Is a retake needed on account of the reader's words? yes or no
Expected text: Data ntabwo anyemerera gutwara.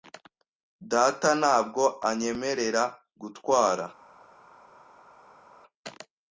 no